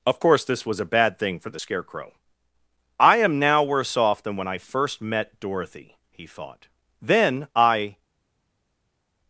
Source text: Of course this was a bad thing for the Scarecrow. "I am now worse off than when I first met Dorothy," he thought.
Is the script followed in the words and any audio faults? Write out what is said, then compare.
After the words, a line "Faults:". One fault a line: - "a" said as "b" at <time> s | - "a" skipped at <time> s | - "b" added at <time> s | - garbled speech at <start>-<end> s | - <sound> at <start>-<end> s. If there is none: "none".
Of course this was a bad thing for the Scarecrow. "I am now worse off than when I first met Dorothy," he thought. "Then, I
Faults:
- "Then I" added at 7.0 s